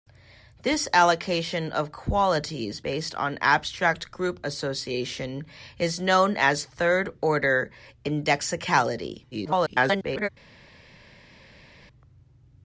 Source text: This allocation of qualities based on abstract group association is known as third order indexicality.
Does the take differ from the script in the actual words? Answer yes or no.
yes